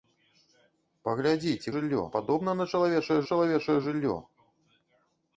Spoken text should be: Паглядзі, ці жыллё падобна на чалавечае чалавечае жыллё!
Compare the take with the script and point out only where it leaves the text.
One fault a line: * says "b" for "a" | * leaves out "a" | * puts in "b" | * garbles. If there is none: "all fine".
all fine